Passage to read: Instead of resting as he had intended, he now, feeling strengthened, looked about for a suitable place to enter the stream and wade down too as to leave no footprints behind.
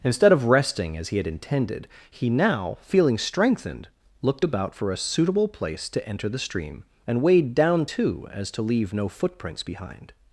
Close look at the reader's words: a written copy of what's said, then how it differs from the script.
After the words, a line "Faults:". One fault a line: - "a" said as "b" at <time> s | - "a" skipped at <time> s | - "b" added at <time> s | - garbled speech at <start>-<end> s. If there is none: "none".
Instead of resting as he had intended, he now, feeling strengthened, looked about for a suitable place to enter the stream and wade down too as to leave no footprints behind.
Faults:
none